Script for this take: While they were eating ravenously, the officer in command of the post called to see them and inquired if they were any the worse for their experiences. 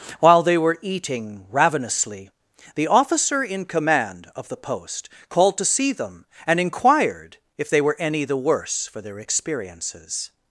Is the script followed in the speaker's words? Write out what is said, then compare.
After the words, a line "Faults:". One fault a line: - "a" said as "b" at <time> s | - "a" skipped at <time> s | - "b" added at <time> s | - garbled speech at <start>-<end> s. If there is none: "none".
While they were eating ravenously, the officer in command of the post called to see them and inquired if they were any the worse for their experiences.
Faults:
none